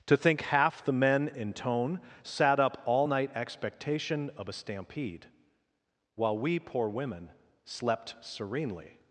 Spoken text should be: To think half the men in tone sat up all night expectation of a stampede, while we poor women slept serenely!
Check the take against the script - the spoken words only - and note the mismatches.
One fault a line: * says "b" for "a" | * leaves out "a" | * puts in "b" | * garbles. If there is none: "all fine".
all fine